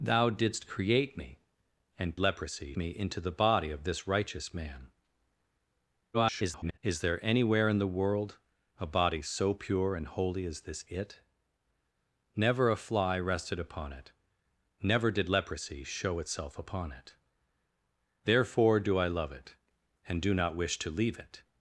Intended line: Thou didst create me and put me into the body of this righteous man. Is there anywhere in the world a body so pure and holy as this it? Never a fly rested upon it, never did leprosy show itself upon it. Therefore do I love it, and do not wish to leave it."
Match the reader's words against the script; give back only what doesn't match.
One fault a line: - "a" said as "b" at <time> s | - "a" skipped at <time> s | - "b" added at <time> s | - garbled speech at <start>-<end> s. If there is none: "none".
- "put" said as "leprosy" at 2.2 s
- garbled speech at 6.1-6.8 s